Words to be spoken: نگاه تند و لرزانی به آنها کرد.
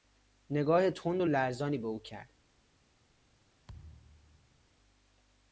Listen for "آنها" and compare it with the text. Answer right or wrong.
wrong